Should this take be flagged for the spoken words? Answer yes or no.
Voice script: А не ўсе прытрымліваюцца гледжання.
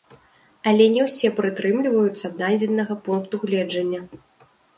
yes